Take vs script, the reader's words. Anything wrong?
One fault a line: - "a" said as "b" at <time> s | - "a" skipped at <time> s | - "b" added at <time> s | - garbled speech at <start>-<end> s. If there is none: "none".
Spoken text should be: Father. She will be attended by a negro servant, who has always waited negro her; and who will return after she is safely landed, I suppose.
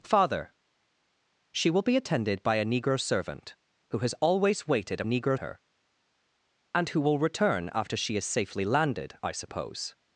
none